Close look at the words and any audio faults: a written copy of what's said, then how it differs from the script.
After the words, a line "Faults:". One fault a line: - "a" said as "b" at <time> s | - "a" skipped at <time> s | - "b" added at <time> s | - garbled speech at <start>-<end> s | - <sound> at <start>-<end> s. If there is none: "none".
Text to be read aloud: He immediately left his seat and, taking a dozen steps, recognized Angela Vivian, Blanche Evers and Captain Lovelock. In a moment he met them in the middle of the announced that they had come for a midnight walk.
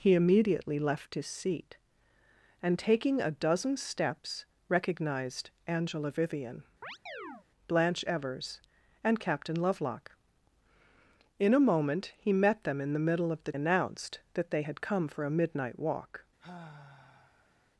He immediately left his seat and, taking a dozen steps, recognized Angela Vivian, Blanche Evers and Captain Lovelock. In a moment he met them in the middle of the announced that they had come for a midnight walk.
Faults:
- chirp at 6.8-7.5 s
- sigh at 16.4-17.7 s